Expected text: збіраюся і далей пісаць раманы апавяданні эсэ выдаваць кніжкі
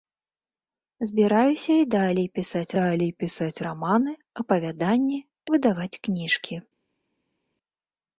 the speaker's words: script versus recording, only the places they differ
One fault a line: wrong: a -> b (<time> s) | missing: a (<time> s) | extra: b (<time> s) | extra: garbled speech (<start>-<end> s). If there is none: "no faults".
extra: далей пісаць (2.8 s)
missing: эсэ (5.2 s)